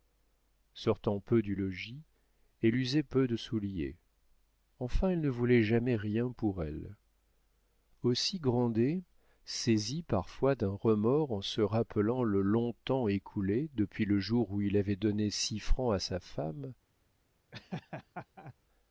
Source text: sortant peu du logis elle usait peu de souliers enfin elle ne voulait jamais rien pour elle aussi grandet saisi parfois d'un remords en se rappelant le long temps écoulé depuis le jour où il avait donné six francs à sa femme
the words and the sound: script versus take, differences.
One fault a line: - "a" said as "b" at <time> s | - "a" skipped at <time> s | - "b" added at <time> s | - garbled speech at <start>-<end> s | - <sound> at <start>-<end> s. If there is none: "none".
- laugh at 17.5-18.5 s